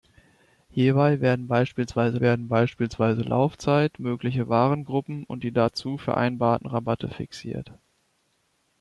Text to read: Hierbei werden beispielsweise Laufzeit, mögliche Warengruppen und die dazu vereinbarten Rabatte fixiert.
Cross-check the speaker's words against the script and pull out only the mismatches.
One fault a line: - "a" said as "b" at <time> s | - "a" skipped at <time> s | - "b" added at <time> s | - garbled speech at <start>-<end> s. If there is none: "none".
- "werden beispielsweise" added at 2.2 s